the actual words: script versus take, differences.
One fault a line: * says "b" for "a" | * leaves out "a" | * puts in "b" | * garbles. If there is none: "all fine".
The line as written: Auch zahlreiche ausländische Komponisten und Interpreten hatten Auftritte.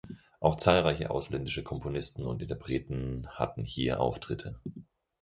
* puts in "hier"